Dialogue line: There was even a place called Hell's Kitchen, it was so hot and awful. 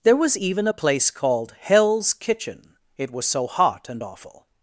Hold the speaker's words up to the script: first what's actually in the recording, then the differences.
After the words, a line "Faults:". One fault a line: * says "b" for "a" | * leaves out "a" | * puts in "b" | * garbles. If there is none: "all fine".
There was even a place called Hell's Kitchen, it was so hot and awful.
Faults:
all fine